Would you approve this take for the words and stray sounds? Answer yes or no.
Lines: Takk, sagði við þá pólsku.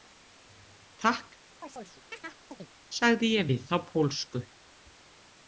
no